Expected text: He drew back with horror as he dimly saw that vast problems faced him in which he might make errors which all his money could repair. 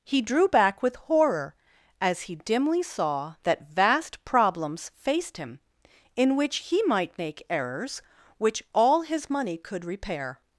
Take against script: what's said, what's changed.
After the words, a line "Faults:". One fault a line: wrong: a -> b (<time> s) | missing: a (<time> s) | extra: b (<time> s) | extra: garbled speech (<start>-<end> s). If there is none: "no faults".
He drew back with horror as he dimly saw that vast problems faced him in which he might make errors which all his money could repair.
Faults:
no faults